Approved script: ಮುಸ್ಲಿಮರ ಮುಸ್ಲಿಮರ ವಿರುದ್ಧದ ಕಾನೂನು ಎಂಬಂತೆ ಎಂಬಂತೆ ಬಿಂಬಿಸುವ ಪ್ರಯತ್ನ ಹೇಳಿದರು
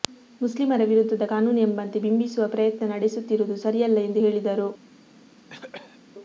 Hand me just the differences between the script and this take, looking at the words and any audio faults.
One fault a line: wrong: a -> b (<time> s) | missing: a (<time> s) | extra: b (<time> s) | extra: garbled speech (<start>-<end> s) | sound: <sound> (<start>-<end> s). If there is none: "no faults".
missing: ಮುಸ್ಲಿಮರ (0.8 s)
missing: ಎಂಬಂತೆ (2.0 s)
extra: ನಡೆಸುತ್ತಿರುವುದು ಸರಿಯಲ್ಲ ಎಂದು (2.9 s)
sound: cough (5.5-6.0 s)